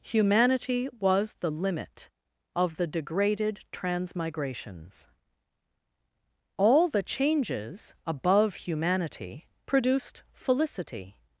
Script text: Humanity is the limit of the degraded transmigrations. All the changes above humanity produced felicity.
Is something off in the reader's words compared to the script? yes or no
yes